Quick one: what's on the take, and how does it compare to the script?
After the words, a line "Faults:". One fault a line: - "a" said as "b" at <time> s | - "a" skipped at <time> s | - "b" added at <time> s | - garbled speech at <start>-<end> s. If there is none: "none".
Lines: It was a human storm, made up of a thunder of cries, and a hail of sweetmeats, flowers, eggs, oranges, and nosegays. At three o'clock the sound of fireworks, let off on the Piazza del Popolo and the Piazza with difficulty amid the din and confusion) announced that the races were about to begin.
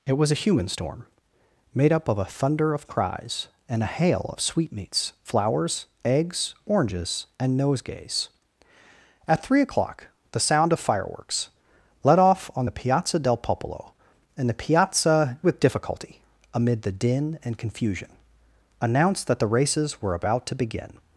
It was a human storm, made up of a thunder of cries, and a hail of sweetmeats, flowers, eggs, oranges, and nosegays. At three o'clock the sound of fireworks, let off on the Piazza del Popolo and the Piazza with difficulty amid the din and confusion) announced that the races were about to begin.
Faults:
none